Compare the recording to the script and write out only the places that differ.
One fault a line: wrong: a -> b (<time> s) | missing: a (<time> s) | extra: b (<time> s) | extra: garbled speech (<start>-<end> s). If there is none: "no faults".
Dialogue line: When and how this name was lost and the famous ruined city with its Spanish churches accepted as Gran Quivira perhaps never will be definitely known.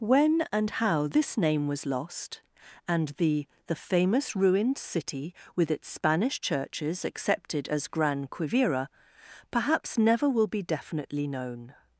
extra: the (3.7 s)